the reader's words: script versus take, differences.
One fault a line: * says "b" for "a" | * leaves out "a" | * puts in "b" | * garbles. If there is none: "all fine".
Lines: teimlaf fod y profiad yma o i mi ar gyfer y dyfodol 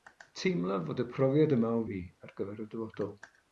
all fine